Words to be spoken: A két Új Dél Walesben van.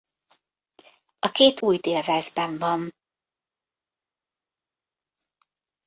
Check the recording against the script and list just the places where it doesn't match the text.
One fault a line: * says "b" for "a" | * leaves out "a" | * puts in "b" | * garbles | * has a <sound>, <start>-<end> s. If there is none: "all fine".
all fine